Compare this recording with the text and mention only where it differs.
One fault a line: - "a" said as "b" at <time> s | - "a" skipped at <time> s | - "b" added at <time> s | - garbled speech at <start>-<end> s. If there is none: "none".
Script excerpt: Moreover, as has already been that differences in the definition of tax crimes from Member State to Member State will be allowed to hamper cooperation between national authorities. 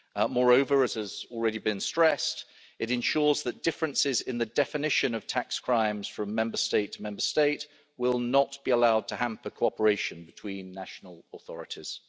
- "stressed it ensures" added at 1.8 s
- "not" added at 8.2 s